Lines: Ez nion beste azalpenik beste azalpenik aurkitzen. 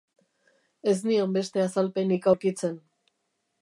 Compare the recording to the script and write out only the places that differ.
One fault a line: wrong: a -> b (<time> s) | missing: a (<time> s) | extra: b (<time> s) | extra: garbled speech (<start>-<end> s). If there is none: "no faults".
missing: beste azalpenik (2.3 s)